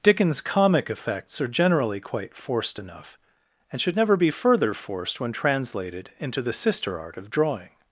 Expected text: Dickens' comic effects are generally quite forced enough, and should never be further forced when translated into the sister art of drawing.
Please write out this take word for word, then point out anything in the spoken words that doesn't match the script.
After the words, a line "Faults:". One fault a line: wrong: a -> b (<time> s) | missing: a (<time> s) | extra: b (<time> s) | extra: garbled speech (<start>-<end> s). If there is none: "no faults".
Dickens' comic effects are generally quite forced enough, and should never be further forced when translated into the sister art of drawing.
Faults:
no faults